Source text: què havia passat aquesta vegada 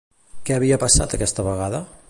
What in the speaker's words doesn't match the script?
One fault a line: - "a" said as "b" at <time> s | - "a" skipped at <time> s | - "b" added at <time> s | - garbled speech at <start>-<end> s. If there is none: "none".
none